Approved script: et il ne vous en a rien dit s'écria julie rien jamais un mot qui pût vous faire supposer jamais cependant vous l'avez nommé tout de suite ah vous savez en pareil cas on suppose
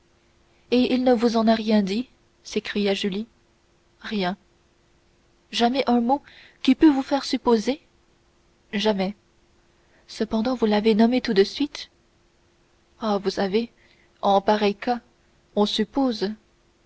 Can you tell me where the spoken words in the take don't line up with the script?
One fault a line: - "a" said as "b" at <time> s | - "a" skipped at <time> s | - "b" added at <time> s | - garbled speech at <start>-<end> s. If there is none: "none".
none